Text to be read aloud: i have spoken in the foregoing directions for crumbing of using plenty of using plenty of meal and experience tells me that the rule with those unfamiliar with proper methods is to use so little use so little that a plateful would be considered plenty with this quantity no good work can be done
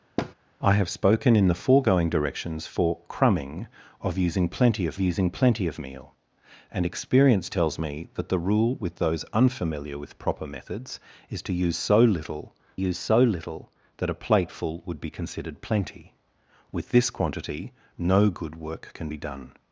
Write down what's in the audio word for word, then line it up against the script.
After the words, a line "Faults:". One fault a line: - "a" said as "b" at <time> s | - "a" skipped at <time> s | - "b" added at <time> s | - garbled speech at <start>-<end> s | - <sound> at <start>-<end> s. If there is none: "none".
i have spoken in the foregoing directions for crumbing of using plenty of using plenty of meal and experience tells me that the rule with those unfamiliar with proper methods is to use so little use so little that a plateful would be considered plenty with this quantity no good work can be done
Faults:
- thud at 0.2-0.3 s